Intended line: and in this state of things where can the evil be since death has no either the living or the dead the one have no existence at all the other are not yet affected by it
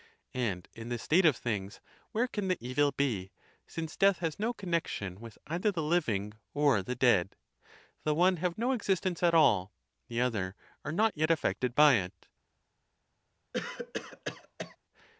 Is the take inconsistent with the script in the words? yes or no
yes